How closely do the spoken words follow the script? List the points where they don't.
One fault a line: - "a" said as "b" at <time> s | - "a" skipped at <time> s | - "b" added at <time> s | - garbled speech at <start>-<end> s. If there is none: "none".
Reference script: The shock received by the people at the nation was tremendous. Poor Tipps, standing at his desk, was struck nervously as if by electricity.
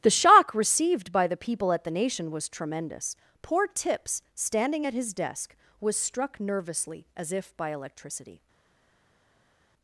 none